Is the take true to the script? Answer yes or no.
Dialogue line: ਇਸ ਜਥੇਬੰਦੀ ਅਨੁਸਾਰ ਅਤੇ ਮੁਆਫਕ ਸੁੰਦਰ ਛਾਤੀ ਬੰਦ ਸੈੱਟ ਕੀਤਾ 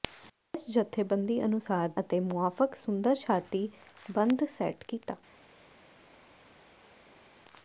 yes